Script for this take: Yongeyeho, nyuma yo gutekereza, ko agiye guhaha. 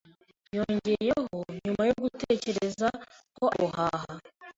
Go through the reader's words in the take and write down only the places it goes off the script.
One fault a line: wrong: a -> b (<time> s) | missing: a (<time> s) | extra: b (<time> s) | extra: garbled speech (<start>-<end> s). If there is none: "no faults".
missing: agiye (3.5 s)